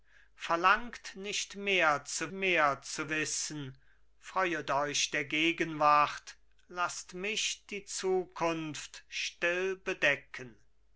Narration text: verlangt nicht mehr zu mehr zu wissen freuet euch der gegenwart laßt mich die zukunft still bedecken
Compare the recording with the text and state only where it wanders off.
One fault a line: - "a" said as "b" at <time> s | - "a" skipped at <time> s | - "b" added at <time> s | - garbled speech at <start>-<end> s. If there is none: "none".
none